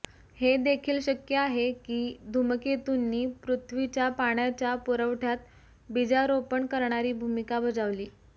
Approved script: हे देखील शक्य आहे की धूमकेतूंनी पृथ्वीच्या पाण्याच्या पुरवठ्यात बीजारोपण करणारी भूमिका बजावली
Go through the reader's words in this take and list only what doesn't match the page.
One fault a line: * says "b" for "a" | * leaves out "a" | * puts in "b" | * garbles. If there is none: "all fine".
all fine